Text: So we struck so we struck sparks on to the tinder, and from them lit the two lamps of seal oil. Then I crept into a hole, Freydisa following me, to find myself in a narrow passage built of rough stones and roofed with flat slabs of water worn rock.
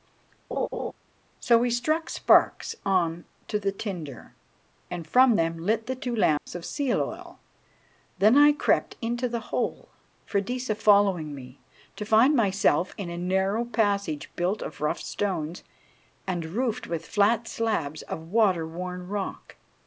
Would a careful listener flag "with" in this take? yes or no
no